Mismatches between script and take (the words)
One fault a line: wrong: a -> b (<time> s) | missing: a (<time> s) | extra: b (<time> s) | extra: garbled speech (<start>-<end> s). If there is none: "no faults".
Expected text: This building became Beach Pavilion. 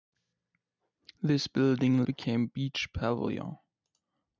no faults